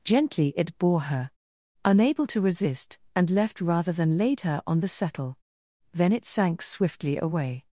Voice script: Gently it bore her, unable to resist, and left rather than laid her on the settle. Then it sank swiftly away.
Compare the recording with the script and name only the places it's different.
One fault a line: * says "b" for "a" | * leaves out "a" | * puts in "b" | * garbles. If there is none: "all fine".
all fine